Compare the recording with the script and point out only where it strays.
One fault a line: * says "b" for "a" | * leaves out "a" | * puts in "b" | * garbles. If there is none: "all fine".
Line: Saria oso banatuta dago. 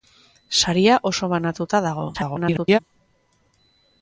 * garbles